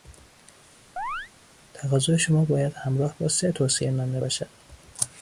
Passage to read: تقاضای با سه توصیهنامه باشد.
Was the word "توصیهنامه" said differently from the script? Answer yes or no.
no